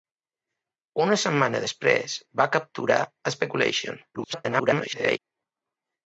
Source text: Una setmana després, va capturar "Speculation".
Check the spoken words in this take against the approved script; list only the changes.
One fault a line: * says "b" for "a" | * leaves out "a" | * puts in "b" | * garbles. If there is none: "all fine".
* garbles